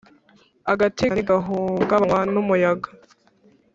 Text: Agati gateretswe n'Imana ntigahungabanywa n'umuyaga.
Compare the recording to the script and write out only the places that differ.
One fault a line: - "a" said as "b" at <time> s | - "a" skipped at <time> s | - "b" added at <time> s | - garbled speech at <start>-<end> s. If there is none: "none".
- "gateretswe n'Imana" skipped at 1.0 s